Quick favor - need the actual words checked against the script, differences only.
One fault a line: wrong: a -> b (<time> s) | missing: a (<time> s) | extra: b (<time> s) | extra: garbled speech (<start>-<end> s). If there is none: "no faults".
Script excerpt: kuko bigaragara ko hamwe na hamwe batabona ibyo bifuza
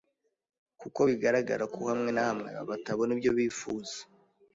no faults